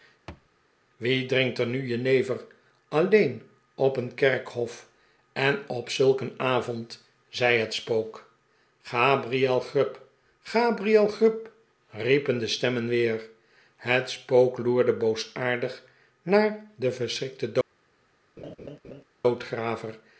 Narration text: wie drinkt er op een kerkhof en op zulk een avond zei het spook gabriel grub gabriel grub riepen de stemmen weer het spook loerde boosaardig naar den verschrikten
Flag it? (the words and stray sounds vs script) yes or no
yes